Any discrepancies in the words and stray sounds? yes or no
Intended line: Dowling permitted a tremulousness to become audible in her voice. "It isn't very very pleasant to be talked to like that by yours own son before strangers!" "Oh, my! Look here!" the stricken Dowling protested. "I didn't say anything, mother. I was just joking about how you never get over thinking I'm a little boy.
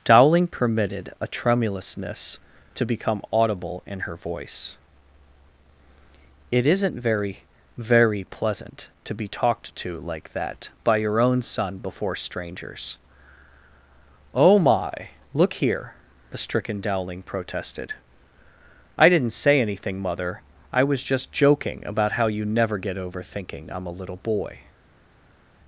yes